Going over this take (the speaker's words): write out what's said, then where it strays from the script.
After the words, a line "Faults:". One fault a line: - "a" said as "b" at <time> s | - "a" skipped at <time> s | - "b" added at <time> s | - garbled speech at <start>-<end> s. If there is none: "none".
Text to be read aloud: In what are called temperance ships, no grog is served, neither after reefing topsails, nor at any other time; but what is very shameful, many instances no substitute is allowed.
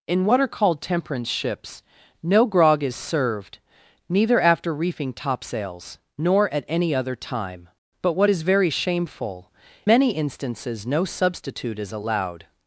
In what are called temperance ships, no grog is served, neither after reefing topsails, nor at any other time; but what is very shameful, many instances no substitute is allowed.
Faults:
none